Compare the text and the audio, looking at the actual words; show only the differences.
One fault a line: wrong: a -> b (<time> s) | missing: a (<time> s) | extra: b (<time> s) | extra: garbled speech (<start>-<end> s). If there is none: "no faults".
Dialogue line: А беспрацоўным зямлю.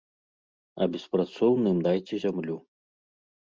extra: дайце (1.9 s)